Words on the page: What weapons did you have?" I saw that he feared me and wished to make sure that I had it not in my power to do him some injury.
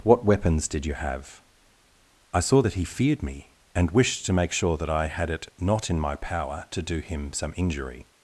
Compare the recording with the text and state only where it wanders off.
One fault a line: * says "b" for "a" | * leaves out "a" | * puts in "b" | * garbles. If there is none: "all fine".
all fine